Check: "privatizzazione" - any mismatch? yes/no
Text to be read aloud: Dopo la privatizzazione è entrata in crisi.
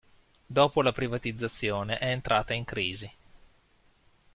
no